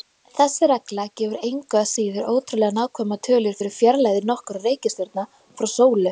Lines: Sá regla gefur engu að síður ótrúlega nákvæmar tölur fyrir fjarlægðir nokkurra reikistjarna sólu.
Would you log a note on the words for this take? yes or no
yes